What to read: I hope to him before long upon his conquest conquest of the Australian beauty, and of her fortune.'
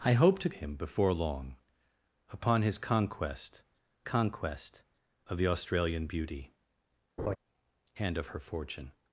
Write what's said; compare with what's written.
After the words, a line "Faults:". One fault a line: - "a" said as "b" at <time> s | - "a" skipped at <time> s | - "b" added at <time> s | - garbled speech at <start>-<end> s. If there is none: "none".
I hope to him before long upon his conquest conquest of the Australian beauty, and of her fortune.'
Faults:
none